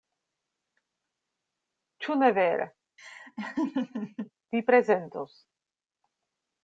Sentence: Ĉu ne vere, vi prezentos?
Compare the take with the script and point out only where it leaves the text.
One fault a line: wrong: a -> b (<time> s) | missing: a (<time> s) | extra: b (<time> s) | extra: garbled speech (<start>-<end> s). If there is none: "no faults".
no faults